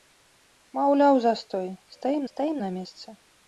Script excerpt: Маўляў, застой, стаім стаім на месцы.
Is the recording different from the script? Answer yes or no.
no